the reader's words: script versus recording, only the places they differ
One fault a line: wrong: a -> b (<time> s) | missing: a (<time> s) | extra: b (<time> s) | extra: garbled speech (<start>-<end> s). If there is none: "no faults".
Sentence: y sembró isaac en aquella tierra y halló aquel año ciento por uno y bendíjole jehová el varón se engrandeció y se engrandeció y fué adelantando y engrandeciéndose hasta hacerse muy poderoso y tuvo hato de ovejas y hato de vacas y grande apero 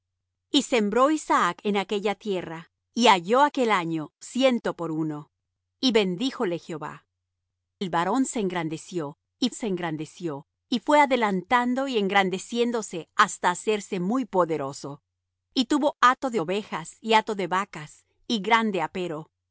no faults